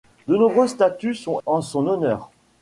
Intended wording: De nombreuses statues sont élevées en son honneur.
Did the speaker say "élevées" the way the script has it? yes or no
no